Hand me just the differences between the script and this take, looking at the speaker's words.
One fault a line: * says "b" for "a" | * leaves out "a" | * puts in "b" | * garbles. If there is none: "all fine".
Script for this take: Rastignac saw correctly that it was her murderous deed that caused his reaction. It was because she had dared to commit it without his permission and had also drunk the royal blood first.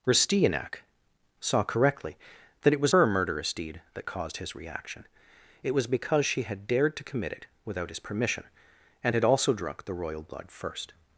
all fine